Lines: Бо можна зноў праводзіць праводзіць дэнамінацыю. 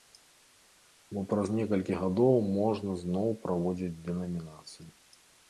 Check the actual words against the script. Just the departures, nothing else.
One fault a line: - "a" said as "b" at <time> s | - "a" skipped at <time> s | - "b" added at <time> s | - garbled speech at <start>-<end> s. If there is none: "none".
- "праз некалькі гадоў" added at 1.3 s
- "праводзіць" skipped at 3.9 s